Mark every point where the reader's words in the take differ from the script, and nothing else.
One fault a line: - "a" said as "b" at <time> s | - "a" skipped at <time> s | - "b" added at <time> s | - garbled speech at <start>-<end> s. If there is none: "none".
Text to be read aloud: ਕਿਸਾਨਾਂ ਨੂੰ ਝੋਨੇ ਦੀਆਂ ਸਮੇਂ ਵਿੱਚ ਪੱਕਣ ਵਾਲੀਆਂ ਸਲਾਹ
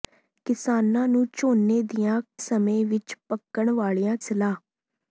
none